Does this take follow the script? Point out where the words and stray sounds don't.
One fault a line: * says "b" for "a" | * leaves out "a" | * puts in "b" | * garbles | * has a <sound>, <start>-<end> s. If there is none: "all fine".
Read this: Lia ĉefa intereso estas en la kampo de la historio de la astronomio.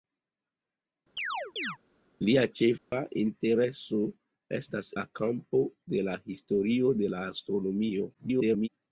* has a chirp, 1.2-1.8 s
* has a dropout, 2.8-2.9 s
* leaves out "en"
* garbles